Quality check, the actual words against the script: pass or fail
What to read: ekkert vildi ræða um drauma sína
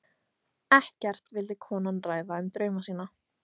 fail